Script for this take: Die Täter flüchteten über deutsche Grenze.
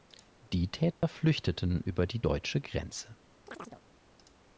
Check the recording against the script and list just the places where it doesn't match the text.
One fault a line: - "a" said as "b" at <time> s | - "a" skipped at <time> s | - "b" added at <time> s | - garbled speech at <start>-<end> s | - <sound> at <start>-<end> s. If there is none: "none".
- dropout at 0.9-1.0 s
- "die" added at 2.1 s
- chirp at 3.5-3.8 s